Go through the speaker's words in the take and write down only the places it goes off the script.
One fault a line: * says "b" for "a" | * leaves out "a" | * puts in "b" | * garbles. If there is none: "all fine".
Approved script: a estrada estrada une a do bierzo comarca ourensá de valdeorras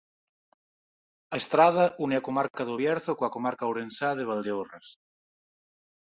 * leaves out "estrada"
* puts in "comarca"
* puts in "coa"